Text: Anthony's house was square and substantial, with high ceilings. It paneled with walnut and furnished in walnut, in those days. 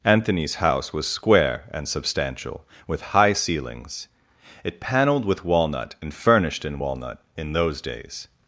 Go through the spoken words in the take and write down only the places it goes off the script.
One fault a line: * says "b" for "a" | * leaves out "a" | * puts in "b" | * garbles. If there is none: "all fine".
all fine